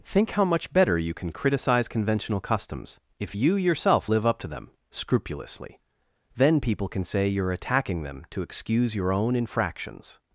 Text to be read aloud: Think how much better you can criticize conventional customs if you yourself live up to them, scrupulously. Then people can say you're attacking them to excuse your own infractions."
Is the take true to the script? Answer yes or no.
yes